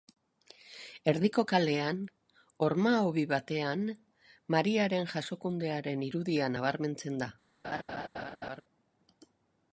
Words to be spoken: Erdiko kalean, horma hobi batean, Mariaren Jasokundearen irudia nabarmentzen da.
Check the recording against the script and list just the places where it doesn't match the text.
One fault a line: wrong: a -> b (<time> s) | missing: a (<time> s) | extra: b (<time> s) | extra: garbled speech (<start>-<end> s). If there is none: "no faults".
no faults